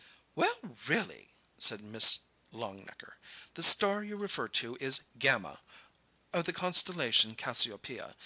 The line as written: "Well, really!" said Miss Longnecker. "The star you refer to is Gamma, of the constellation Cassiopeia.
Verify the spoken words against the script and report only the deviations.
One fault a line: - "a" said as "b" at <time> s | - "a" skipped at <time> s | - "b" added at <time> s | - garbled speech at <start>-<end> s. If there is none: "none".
none